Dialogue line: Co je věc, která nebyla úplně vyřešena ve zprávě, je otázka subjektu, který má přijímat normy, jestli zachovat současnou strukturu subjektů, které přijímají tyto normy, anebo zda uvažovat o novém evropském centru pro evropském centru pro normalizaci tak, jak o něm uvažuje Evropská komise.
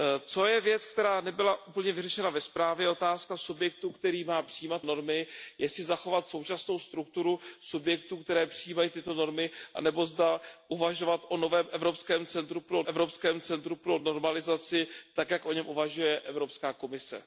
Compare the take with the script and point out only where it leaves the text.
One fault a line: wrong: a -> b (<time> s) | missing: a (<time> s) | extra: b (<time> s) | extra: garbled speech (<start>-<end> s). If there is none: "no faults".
no faults